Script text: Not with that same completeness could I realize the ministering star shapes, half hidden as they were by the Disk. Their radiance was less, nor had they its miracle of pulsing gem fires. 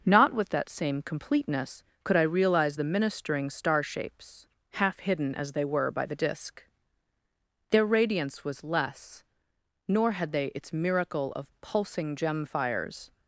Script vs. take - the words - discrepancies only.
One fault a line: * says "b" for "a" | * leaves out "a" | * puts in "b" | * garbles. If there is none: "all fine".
all fine